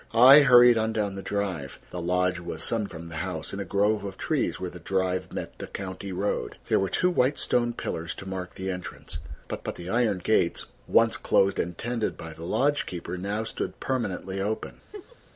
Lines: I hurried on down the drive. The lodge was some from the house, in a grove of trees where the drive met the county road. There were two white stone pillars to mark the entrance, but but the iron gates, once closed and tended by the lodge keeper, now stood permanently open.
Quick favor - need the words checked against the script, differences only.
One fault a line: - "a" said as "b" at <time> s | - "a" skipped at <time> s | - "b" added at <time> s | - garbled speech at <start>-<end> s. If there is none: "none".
none